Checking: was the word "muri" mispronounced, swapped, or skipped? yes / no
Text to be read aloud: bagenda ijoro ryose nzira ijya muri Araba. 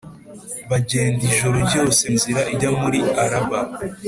no